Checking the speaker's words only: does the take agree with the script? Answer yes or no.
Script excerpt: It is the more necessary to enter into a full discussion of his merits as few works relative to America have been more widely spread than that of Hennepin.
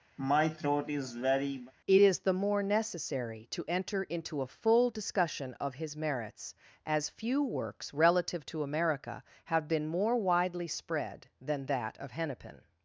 yes